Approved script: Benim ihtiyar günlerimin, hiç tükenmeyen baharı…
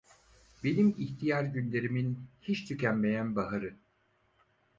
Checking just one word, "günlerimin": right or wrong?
right